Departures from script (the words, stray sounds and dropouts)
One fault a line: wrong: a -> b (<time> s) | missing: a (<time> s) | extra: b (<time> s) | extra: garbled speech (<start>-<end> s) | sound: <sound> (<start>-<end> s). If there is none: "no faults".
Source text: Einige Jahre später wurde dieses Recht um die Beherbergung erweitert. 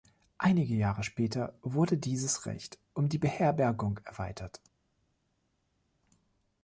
no faults